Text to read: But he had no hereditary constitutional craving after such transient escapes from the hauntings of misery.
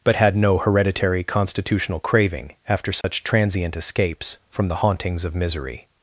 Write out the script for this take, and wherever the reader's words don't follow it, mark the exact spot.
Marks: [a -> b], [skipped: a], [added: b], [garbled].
But [skipped: he] had no hereditary constitutional craving after such transient escapes from the hauntings of misery.